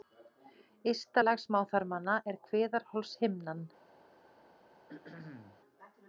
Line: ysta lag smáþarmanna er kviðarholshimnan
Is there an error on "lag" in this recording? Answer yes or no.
no